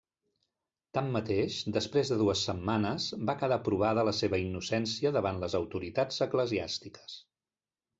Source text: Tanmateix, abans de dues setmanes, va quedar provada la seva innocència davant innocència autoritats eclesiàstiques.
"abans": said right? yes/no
no